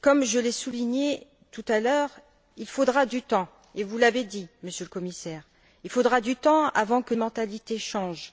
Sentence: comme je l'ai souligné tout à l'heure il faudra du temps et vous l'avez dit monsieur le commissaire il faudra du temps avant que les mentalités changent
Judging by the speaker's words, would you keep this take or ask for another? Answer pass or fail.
fail